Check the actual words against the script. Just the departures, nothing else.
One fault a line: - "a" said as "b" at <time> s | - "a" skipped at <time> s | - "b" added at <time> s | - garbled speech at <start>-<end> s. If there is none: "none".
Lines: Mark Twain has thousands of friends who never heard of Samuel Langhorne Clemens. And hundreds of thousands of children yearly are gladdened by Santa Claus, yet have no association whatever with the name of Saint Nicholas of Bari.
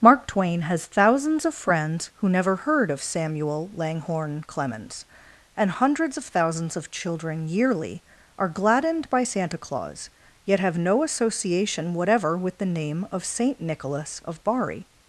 none